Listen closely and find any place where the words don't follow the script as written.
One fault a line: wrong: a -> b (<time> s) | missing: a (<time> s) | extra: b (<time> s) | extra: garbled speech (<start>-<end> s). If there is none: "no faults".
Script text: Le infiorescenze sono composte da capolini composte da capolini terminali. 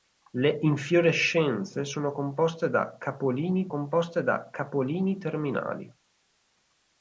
no faults